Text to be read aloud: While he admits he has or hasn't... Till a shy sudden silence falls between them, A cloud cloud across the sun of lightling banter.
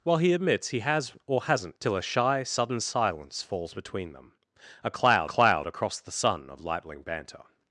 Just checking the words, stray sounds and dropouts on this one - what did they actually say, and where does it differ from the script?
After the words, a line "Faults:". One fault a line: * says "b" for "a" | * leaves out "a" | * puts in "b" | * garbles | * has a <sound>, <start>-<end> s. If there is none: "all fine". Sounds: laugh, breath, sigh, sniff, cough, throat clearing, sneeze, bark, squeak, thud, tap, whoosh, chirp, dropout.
While he admits he has or hasn't... Till a shy sudden silence falls between them, A cloud cloud across the sun of lightling banter.
Faults:
all fine